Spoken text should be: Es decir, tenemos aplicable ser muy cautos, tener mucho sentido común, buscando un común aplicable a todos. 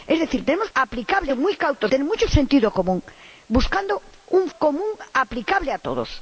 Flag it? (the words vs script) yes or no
no